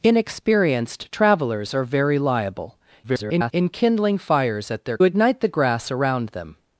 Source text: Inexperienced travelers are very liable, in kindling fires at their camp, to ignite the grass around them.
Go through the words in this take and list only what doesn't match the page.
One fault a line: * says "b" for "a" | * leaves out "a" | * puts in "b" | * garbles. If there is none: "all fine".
* garbles
* leaves out "camp to"